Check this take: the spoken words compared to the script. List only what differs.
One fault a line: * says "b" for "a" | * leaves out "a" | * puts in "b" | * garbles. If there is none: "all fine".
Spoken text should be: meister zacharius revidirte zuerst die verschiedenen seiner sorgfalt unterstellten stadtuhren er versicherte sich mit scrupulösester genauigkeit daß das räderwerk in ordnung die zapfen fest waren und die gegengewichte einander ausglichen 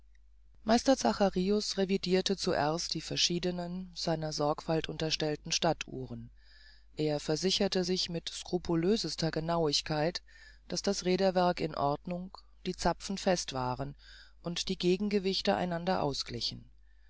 all fine